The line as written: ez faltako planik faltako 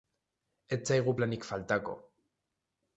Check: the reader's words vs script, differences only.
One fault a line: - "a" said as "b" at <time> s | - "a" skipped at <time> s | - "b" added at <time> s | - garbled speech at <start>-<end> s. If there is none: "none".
- "faltako" said as "zaigu" at 0.9 s